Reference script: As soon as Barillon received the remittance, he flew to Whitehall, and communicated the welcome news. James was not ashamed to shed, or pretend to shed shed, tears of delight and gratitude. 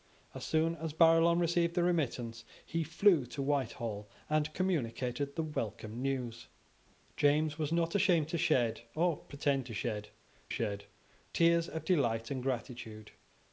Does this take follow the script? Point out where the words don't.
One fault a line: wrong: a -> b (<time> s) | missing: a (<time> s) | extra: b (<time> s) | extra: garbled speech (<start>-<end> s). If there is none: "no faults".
no faults